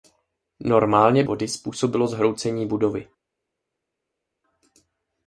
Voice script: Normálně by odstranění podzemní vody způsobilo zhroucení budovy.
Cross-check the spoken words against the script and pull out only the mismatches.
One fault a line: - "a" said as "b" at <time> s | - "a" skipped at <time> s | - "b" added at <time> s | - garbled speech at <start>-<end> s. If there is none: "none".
- "by odstranění podzemní" skipped at 1.2 s